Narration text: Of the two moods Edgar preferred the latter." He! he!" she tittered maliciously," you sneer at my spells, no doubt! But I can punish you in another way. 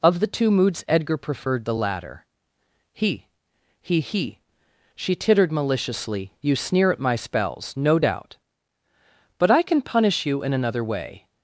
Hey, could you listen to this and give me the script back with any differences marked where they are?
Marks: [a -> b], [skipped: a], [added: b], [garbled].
Of the two moods Edgar preferred the latter." He! he!" [added: he] she tittered maliciously," you sneer at my spells, no doubt! But I can punish you in another way.